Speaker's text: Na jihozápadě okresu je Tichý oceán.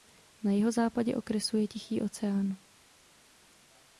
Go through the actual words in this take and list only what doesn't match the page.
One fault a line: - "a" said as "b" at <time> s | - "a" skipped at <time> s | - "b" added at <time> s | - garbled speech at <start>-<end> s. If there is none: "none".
none